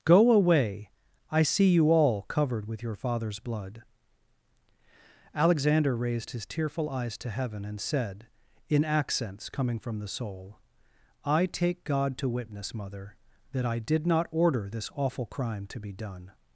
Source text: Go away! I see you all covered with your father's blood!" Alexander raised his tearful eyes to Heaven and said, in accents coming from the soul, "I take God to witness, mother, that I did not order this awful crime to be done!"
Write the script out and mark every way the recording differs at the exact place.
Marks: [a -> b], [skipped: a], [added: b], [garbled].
Go away! I see you all covered with your father's blood!" Alexander raised his tearful eyes to Heaven and said, in accents coming from the soul, "I take God to witness, mother, that I did not order this awful crime to be done!"